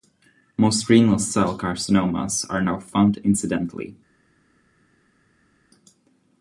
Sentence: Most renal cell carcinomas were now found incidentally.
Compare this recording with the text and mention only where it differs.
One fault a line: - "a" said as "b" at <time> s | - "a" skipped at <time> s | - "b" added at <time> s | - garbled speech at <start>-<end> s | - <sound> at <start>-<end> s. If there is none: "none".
- "were" said as "are" at 2.5 s